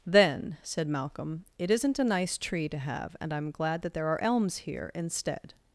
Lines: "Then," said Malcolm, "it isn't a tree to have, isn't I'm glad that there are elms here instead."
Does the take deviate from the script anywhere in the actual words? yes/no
yes